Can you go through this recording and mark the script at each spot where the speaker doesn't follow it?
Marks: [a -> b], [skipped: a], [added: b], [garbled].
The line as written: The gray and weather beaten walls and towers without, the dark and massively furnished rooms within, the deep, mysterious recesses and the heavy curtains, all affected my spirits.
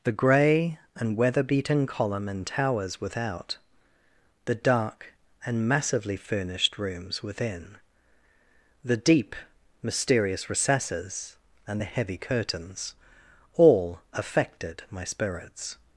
The gray and weather beaten [walls -> column] and towers without, the dark and massively furnished rooms within, the deep, mysterious recesses and the heavy curtains, all affected my spirits.